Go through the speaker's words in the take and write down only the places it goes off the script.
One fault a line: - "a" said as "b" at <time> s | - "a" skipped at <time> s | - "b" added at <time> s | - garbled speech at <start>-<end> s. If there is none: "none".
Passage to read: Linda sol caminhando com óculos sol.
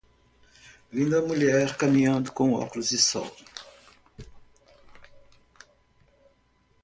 - "sol" said as "mulher" at 1.2 s
- "de" added at 2.9 s